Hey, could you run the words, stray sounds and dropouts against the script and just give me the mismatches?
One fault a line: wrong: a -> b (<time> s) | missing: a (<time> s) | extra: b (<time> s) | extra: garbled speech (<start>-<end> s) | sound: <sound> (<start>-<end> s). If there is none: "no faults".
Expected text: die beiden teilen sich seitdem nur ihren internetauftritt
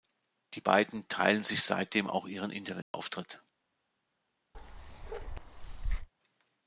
wrong: nur -> auch (2.1 s)
sound: dropout (2.8-2.9 s)
sound: bark (4.5-6.1 s)